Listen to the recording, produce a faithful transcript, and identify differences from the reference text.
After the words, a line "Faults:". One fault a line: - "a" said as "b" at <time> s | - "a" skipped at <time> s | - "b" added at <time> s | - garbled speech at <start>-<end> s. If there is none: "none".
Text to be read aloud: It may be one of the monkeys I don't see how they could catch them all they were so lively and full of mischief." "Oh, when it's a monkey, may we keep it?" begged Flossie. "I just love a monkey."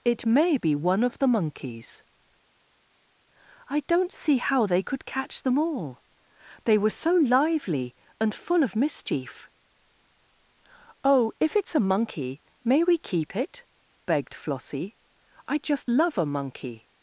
It may be one of the monkeys I don't see how they could catch them all they were so lively and full of mischief." "Oh, if it's a monkey, may we keep it?" begged Flossie. "I just love a monkey."
Faults:
- "when" said as "if" at 11.4 s